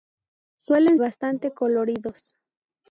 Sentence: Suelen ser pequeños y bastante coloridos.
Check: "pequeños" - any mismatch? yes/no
yes